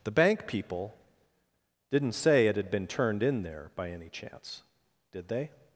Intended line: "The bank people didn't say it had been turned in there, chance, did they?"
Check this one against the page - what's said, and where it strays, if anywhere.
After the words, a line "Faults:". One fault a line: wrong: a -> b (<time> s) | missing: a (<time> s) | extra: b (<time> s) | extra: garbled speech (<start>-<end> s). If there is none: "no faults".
"The bank people didn't say it had been turned in there, by any chance, did they?"
Faults:
extra: by any (3.8 s)